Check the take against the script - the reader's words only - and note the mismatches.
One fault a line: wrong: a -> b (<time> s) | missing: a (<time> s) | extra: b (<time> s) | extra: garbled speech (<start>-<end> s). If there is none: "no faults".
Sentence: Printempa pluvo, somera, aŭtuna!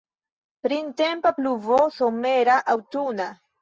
no faults